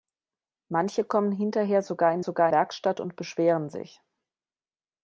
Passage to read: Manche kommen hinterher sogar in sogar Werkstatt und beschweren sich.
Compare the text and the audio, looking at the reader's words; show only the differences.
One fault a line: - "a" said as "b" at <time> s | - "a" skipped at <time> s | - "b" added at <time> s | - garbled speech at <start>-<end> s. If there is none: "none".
none